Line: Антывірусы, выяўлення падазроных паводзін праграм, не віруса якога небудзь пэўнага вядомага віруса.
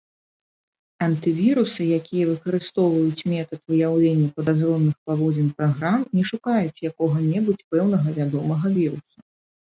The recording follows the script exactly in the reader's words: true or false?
false